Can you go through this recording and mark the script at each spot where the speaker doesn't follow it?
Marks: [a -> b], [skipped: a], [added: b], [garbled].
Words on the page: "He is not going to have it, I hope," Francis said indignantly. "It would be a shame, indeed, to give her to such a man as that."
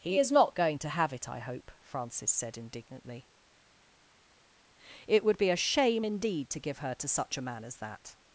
"He is not going to have it, I hope," Francis said indignantly. "It would be a shame, indeed, to give her to such a man as that."